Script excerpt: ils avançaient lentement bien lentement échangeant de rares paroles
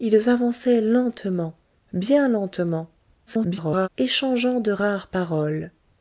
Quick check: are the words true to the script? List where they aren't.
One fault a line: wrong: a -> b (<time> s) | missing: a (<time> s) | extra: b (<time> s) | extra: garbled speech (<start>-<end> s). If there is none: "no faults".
extra: garbled speech (3.3-3.9 s)